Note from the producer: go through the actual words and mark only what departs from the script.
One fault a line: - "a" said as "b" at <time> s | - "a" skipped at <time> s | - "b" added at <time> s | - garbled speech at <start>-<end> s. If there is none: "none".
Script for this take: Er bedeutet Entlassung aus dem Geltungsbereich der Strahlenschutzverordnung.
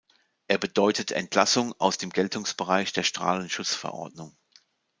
none